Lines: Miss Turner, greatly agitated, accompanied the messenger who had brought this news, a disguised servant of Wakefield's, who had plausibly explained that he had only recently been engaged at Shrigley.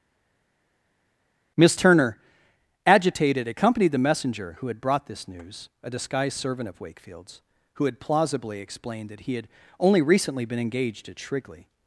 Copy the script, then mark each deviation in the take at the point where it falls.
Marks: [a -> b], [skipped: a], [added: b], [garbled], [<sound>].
Miss Turner, [skipped: greatly] agitated, accompanied the messenger who had brought this news, a disguised servant of Wakefield's, who had plausibly explained that he had only recently been engaged at Shrigley.